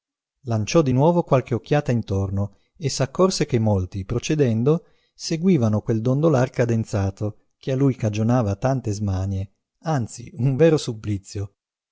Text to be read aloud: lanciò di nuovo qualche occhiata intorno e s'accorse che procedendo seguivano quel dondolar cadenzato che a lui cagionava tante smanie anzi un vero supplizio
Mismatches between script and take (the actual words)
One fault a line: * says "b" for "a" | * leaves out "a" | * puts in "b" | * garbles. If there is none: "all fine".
* puts in "molti"